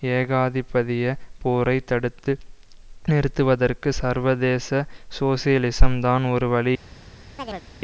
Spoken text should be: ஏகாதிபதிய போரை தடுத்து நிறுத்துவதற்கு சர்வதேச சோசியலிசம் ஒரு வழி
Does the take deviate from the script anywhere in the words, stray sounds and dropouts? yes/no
yes